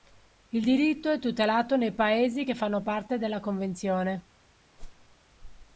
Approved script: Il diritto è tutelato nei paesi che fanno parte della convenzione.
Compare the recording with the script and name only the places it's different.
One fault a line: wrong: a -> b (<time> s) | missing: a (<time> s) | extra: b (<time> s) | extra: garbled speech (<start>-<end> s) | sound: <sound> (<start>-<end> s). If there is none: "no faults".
sound: whoosh (4.8-5.2 s)